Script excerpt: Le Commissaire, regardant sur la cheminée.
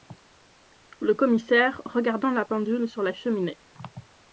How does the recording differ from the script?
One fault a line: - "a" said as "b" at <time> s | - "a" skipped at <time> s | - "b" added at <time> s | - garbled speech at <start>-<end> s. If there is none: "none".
- "la pendule" added at 2.3 s